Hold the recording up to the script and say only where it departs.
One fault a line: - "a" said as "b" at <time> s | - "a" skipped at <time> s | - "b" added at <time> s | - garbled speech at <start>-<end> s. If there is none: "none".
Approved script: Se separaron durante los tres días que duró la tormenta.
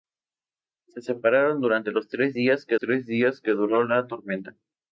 - "tres días que" added at 2.8 s